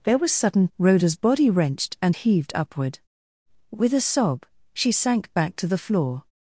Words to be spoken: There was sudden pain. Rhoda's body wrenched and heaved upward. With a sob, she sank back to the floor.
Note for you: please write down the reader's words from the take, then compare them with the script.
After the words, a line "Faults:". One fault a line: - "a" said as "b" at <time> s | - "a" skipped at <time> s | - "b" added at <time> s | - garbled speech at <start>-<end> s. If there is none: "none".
There was sudden. Rhoda's body wrenched and heaved upward. With a sob, she sank back to the floor.
Faults:
- "pain" skipped at 0.7 s